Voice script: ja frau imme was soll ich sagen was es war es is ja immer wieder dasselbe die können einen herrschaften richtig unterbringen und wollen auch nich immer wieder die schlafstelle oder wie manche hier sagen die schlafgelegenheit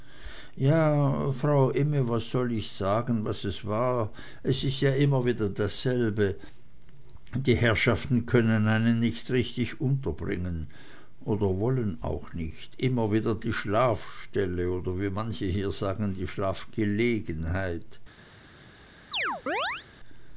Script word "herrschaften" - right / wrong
wrong